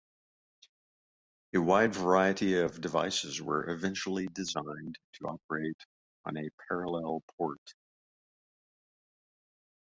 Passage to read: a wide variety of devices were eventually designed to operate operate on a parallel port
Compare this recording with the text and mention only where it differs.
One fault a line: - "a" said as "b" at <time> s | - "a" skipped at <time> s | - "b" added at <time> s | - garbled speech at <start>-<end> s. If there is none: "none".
- "operate" skipped at 5.8 s